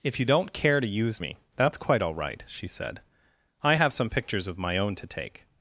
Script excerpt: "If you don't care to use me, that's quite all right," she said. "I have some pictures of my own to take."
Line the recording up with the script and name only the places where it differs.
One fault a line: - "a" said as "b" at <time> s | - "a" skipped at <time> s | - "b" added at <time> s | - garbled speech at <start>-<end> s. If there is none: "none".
none